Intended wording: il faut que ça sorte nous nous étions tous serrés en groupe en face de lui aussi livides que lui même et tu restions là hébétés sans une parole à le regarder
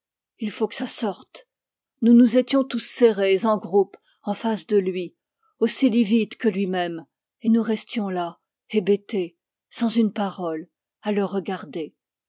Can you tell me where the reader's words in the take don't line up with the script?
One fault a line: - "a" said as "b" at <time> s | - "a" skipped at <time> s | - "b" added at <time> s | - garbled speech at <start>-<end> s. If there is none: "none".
- "tu" said as "nous" at 7.5 s